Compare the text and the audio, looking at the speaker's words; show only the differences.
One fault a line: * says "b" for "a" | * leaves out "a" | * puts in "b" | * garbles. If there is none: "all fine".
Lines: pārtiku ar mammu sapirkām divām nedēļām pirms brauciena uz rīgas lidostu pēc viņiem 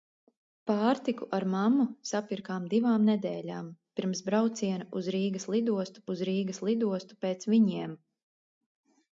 * puts in "uz rīgas lidostu"